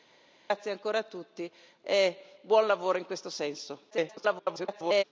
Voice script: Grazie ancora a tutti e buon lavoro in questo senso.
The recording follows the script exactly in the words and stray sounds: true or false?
false